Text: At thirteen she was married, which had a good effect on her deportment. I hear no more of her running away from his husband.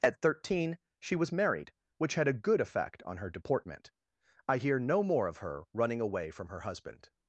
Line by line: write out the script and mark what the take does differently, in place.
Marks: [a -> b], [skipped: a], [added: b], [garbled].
At thirteen she was married, which had a good effect on her deportment. I hear no more of her running away from [his -> her] husband.